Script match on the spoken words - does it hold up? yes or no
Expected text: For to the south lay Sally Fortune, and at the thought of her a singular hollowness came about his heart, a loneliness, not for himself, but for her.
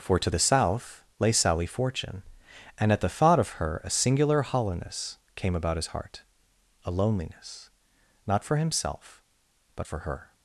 yes